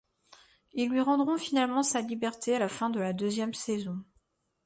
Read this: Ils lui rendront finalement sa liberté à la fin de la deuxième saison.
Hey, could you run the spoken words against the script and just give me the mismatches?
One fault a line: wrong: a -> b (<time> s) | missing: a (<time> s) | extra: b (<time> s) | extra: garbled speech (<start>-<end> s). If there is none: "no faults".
no faults